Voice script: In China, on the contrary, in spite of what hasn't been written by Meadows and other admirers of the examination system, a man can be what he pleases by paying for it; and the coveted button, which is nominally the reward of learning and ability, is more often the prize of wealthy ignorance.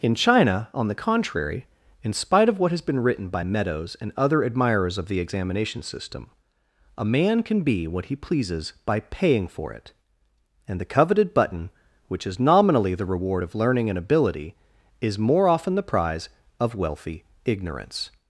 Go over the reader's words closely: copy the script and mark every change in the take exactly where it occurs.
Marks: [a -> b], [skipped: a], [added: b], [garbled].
In China, on the contrary, in spite of what [hasn't -> has] been written by Meadows and other admirers of the examination system, a man can be what he pleases by paying for it; and the coveted button, which is nominally the reward of learning and ability, is more often the prize of wealthy ignorance.